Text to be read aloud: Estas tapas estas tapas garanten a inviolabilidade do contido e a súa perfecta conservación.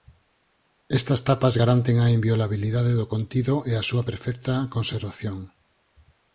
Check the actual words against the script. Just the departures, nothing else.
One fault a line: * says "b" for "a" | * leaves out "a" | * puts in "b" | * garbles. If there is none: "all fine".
* leaves out "estas tapas"